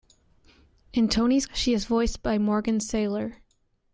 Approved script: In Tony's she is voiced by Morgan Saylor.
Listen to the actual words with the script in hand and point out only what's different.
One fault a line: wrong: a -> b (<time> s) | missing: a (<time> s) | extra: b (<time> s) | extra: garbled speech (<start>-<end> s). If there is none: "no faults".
no faults